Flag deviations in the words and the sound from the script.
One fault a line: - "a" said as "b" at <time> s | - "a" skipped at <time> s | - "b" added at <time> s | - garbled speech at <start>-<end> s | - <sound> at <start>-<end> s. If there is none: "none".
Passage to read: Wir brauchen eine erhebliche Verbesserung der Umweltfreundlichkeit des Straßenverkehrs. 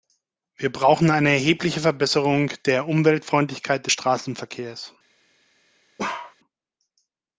- bark at 6.0-6.4 s